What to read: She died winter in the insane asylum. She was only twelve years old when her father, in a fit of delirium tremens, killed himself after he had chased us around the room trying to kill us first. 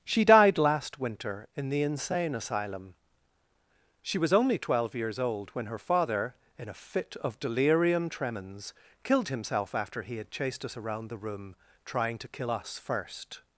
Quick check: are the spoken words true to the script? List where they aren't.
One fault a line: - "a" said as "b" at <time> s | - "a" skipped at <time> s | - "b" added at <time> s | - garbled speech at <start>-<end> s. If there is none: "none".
- "last" added at 0.6 s